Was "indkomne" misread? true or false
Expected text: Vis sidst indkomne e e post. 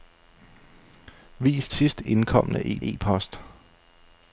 false